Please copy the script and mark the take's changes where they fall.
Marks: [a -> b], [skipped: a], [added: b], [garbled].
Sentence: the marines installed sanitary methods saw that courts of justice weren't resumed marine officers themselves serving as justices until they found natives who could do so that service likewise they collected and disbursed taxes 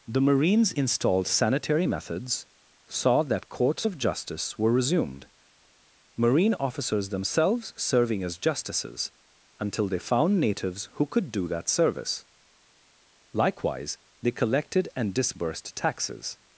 the marines installed sanitary methods saw that courts of justice [weren't -> were] resumed marine officers themselves serving as justices until they found natives who could do [skipped: so] that service likewise they collected and disbursed taxes